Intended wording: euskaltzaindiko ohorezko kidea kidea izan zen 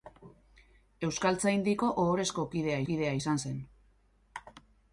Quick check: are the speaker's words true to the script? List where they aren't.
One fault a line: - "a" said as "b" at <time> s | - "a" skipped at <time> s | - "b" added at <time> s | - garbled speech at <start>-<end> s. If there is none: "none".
none